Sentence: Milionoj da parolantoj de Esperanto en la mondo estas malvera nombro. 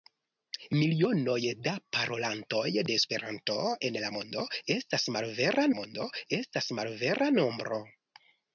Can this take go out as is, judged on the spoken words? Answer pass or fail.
fail